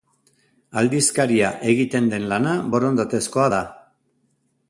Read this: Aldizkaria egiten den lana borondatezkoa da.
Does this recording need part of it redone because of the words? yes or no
no